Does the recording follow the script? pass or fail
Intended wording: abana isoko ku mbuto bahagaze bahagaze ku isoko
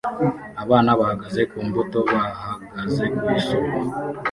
fail